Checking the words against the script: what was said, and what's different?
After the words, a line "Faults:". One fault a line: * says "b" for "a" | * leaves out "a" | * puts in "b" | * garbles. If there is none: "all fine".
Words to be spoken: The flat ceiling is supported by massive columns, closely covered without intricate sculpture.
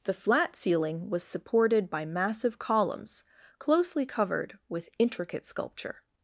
The flat ceiling was supported by massive columns, closely covered with intricate sculpture.
Faults:
* says "was" for "is"
* says "with" for "without"